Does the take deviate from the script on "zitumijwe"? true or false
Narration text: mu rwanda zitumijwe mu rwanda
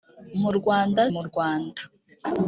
true